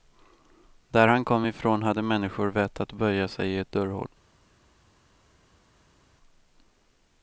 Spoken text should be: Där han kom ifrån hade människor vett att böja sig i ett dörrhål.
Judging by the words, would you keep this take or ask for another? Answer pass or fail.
pass